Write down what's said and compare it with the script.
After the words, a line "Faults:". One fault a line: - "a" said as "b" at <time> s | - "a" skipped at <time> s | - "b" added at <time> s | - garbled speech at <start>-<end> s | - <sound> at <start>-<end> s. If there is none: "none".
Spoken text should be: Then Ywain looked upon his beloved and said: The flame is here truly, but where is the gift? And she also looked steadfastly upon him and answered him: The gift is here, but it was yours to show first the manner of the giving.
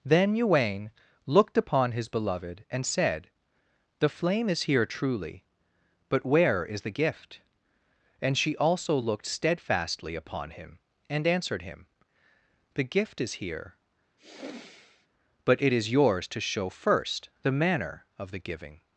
Then Ywain looked upon his beloved and said: The flame is here truly, but where is the gift? And she also looked steadfastly upon him and answered him: The gift is here, but it is yours to show first the manner of the giving.
Faults:
- sigh at 14.2-15.1 s
- "was" said as "is" at 15.7 s